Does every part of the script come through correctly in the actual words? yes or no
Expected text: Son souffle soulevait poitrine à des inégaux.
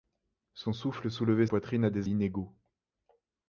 yes